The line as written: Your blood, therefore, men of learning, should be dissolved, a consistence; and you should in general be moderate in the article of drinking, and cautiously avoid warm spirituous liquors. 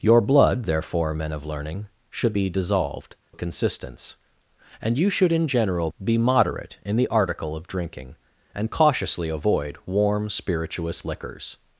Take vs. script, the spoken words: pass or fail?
pass